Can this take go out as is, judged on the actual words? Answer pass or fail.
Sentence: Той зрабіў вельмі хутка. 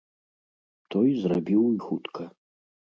fail